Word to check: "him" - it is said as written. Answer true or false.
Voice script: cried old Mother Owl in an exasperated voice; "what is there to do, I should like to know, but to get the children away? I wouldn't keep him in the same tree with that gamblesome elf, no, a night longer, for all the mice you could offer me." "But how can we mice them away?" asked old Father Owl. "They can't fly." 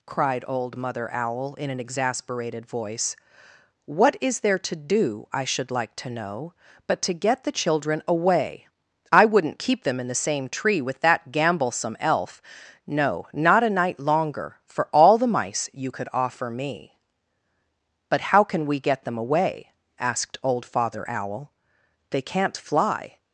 false